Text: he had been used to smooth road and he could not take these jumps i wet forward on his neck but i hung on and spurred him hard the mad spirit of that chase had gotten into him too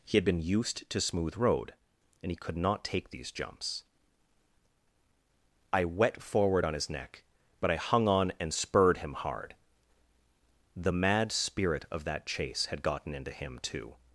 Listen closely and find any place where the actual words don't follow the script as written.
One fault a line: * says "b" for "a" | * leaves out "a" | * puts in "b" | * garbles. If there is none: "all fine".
all fine